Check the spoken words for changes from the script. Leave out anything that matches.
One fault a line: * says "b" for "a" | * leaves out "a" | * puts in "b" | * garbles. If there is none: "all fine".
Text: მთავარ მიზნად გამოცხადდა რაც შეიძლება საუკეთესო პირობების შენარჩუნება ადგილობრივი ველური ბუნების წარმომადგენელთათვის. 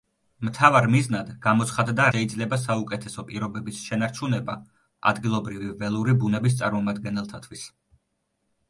* leaves out "რაც"